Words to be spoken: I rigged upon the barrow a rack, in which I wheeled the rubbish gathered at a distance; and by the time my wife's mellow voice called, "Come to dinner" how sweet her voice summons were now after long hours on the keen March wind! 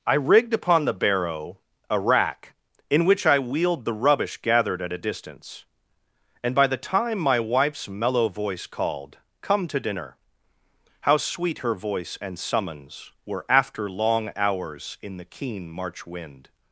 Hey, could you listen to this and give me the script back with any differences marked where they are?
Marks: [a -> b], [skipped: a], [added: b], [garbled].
I rigged upon the barrow a rack, in which I wheeled the rubbish gathered at a distance; and by the time my wife's mellow voice called, "Come to dinner" how sweet her voice [added: and] summons were [skipped: now] after long hours [on -> in] the keen March wind!